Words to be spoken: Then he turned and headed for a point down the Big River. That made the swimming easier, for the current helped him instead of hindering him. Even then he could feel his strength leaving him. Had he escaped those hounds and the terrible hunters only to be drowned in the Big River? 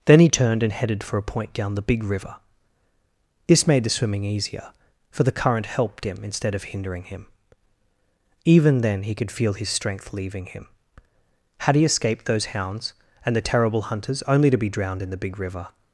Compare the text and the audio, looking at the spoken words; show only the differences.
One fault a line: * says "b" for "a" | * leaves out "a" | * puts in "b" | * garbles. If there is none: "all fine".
* says "This" for "That"